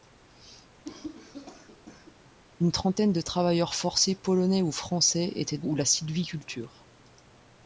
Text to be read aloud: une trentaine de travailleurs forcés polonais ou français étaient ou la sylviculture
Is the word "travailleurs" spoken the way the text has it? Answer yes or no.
yes